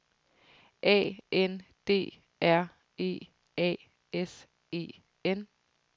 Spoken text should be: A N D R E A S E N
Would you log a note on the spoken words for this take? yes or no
no